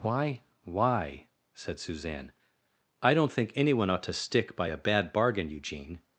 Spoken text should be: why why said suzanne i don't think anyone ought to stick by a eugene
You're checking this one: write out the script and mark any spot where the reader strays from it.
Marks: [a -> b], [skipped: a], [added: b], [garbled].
why why said suzanne i don't think anyone ought to stick by a [added: bad bargain] eugene